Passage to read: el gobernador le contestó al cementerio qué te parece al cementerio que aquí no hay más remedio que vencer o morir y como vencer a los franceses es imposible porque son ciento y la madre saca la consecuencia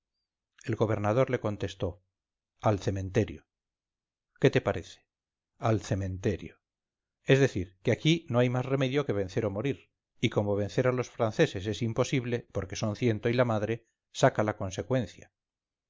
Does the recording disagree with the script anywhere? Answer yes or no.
yes